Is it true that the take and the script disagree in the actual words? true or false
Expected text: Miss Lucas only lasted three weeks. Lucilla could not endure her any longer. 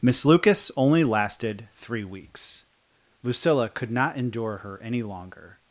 false